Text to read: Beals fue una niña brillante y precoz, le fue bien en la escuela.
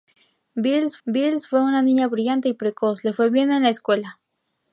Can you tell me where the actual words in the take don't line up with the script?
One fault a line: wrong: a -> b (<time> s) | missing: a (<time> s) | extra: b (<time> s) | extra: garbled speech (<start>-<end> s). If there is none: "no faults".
extra: beals (1.1 s)